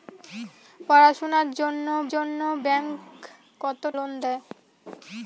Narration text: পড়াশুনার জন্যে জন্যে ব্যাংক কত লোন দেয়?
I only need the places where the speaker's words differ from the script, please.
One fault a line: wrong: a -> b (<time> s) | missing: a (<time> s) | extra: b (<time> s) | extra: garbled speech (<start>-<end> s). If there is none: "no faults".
no faults